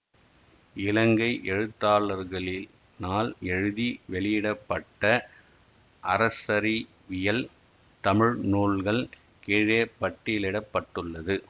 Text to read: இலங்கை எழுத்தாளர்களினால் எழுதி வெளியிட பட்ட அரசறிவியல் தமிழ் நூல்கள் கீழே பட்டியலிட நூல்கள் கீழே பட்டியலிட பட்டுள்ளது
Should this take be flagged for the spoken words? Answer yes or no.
yes